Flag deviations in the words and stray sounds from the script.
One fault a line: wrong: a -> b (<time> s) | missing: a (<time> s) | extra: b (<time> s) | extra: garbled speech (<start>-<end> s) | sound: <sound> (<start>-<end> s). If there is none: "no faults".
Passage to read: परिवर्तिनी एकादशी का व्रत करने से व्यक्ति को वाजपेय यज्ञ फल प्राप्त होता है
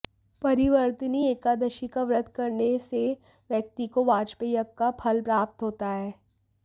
extra: का (4.8 s)